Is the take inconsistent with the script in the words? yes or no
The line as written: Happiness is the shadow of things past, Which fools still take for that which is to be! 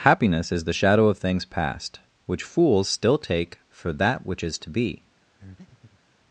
no